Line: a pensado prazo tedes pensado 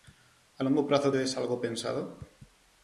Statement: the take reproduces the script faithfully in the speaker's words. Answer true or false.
false